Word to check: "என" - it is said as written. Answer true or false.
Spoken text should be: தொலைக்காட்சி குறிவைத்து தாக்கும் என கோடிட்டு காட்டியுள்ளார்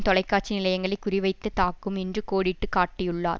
false